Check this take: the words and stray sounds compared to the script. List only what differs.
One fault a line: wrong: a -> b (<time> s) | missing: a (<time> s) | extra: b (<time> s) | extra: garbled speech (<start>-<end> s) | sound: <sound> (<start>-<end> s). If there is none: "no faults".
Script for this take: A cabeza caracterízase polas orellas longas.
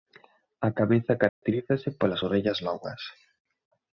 sound: dropout (1.3-1.4 s)